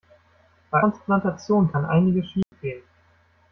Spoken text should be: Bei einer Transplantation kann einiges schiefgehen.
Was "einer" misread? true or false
true